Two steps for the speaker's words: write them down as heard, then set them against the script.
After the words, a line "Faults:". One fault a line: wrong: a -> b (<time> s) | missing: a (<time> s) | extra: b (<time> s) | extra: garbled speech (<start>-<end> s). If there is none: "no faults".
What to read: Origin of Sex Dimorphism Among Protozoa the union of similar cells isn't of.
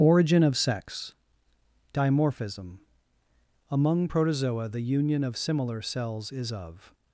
Origin of Sex Dimorphism Among Protozoa the union of similar cells is of.
Faults:
wrong: isn't -> is (6.3 s)